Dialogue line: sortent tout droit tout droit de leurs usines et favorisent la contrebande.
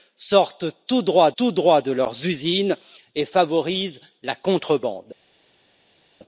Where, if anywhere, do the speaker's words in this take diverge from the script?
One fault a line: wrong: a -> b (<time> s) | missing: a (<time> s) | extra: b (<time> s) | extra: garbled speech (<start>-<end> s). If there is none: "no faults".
no faults